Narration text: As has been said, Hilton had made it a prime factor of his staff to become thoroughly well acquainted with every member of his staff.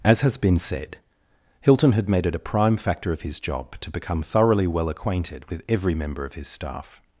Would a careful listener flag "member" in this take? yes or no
no